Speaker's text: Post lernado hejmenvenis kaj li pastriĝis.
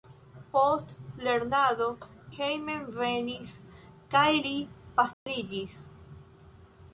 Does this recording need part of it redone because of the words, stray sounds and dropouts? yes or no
yes